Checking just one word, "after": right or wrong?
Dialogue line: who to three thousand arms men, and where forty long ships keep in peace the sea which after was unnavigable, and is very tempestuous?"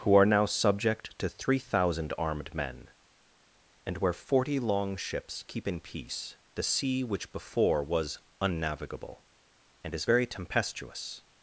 wrong